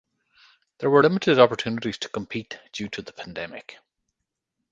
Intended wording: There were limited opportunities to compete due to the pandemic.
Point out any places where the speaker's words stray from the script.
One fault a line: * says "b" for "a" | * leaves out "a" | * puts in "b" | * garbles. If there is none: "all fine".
all fine